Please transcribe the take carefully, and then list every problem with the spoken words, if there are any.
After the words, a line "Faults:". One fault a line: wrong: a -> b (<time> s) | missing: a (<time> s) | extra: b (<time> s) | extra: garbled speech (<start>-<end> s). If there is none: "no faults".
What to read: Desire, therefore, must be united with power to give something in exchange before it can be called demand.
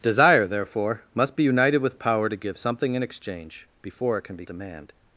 Desire, therefore, must be united with power to give something in exchange before it can be demand.
Faults:
missing: called (4.5 s)